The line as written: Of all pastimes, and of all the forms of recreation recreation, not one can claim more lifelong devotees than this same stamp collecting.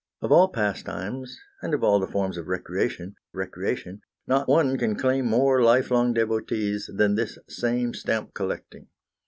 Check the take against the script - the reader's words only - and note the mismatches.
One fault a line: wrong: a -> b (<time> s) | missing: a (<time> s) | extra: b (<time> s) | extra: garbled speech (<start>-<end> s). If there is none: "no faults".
no faults